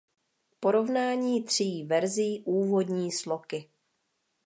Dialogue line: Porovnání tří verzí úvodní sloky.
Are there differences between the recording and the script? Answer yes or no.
no